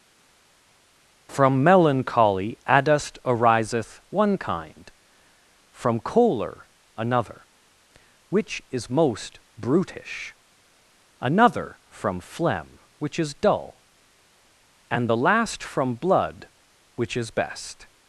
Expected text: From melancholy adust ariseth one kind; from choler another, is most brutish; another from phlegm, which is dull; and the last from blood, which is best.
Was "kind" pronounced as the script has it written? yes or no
yes